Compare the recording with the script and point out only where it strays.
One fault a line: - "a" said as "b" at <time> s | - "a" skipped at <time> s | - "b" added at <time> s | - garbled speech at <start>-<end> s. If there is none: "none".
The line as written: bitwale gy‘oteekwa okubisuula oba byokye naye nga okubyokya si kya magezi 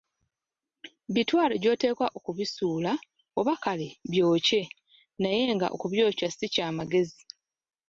- "kale" added at 3.6 s